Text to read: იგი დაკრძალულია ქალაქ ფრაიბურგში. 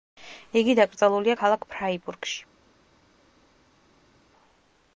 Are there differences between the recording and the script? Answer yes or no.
no